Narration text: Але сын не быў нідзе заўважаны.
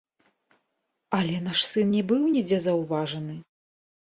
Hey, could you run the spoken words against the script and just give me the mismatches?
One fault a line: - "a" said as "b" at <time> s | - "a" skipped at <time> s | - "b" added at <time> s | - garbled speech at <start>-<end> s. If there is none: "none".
- "наш" added at 1.5 s